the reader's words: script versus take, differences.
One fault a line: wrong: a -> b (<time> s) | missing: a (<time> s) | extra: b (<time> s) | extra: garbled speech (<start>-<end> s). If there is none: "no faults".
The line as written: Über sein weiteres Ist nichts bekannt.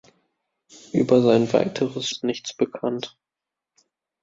no faults